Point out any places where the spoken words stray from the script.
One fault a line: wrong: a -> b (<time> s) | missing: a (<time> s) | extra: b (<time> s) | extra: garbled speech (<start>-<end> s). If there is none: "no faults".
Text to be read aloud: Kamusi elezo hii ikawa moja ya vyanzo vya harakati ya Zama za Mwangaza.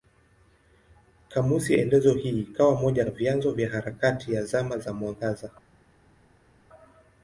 no faults